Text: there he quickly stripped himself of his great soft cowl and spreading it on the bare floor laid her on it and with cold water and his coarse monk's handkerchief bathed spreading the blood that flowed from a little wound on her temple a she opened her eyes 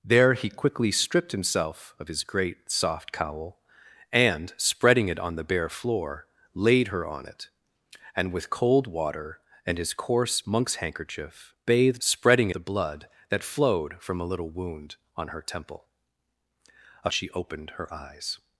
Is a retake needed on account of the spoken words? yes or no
no